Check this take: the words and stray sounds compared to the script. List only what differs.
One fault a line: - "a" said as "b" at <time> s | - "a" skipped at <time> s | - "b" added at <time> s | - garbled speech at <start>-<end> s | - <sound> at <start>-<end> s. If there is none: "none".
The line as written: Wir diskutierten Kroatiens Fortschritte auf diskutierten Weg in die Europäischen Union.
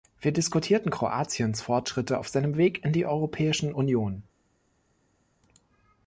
- "diskutierten" said as "seinem" at 2.3 s